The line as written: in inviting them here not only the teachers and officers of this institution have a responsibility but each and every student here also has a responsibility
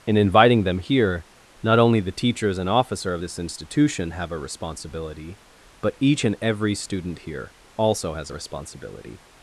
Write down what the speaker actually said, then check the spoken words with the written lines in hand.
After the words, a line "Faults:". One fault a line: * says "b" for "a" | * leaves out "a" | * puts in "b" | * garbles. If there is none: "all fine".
in inviting them here not only the teachers and officer of this institution have a responsibility but each and every student here also has a responsibility
Faults:
* says "officer" for "officers"